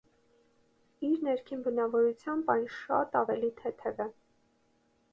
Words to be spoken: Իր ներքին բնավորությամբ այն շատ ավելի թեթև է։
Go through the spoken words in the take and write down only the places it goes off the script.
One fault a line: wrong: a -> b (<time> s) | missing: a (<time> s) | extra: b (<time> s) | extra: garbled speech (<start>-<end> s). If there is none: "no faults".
no faults